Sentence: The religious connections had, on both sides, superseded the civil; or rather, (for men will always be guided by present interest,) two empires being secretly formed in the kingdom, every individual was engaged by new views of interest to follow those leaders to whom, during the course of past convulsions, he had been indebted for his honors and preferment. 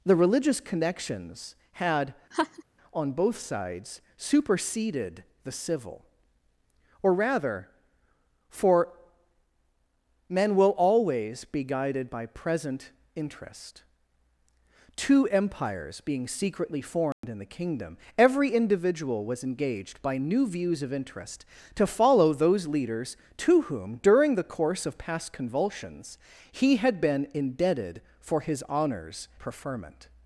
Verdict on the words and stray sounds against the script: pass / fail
fail